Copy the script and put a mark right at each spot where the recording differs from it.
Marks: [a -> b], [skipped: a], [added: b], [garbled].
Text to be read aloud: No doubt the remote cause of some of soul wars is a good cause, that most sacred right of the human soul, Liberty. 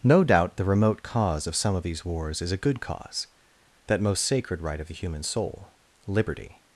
No doubt the remote cause of some of [soul -> these] wars is a good cause, that most sacred right of the human soul, Liberty.